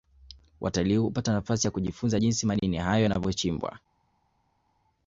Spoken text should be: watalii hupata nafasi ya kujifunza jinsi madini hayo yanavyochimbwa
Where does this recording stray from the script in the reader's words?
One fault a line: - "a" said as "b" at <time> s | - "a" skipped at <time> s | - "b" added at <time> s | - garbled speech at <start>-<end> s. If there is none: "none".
none